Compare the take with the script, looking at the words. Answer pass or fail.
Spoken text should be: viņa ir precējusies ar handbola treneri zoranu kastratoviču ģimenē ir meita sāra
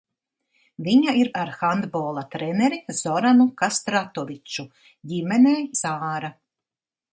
fail